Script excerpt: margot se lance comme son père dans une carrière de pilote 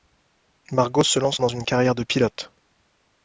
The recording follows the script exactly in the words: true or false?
false